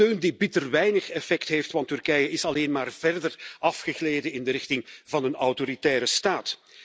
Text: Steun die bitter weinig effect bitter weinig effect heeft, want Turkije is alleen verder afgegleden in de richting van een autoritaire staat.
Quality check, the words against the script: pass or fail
fail